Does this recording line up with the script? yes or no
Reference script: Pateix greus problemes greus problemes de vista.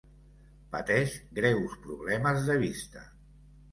no